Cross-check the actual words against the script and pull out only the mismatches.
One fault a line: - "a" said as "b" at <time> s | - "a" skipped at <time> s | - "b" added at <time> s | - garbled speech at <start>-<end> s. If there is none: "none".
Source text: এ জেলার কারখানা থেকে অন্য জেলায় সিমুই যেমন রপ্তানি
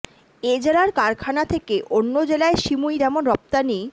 none